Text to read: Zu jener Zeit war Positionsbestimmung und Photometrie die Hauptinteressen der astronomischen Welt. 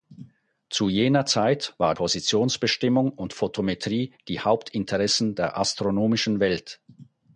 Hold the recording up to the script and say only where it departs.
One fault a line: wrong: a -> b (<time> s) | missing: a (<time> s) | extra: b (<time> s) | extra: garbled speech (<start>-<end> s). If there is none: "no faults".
no faults